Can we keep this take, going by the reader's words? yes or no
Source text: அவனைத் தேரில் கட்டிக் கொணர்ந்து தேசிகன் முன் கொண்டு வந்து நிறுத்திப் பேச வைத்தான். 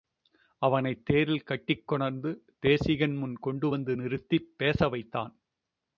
yes